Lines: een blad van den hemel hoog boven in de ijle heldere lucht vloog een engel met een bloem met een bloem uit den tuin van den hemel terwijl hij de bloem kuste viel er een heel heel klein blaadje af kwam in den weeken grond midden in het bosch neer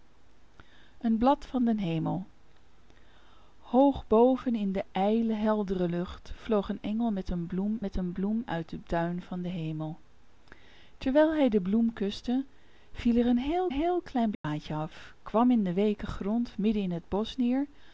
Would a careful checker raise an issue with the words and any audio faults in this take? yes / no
yes